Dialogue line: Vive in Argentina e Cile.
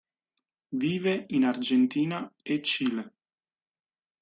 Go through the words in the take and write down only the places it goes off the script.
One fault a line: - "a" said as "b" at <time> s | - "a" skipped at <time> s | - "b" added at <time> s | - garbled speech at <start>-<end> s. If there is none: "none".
none